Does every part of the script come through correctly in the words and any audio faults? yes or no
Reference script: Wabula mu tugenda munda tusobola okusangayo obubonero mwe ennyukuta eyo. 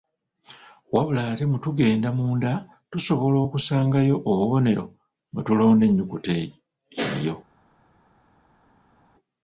no